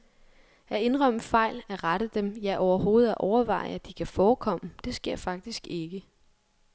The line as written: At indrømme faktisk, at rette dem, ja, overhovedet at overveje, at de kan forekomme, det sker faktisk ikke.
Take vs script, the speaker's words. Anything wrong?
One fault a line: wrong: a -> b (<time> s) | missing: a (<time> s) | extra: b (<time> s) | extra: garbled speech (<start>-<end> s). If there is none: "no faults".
wrong: faktisk -> fejl (1.2 s)